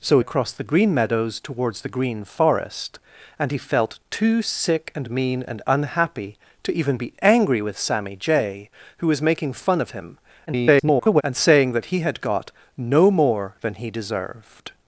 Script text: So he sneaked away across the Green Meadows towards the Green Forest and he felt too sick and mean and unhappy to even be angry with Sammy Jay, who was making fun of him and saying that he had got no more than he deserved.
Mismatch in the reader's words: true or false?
true